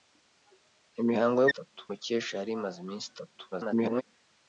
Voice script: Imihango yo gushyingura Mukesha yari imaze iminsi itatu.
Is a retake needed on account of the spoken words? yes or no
yes